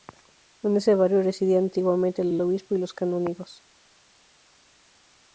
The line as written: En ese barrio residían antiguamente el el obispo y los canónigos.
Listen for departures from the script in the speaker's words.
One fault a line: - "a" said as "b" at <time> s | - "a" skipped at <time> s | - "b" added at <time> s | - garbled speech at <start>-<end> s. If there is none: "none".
none